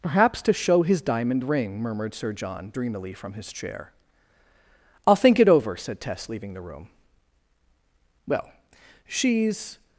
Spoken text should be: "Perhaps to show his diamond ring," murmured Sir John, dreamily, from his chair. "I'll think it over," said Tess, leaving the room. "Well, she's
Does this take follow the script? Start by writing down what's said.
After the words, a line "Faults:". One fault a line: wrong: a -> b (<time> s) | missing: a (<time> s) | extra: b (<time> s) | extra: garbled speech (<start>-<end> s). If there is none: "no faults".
"Perhaps to show his diamond ring," murmured Sir John, dreamily, from his chair. "I'll think it over," said Tess, leaving the room. "Well, she's
Faults:
no faults